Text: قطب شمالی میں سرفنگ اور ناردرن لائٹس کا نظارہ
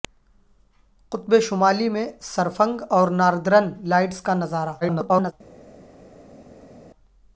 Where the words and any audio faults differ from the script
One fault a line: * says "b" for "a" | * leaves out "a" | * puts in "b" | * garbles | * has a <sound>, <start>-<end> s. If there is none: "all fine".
* garbles